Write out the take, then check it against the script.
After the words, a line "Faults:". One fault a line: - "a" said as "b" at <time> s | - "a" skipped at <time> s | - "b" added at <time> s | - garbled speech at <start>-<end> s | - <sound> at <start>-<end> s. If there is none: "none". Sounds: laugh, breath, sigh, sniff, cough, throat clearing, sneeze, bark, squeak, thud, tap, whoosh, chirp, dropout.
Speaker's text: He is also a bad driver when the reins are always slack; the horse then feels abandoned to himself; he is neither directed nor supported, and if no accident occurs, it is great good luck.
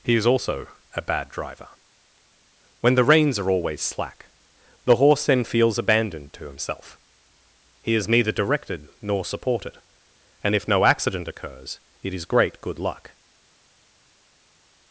He is also a bad driver when the reins are always slack; the horse then feels abandoned to himself; he is neither directed nor supported, and if no accident occurs, it is great good luck.
Faults:
none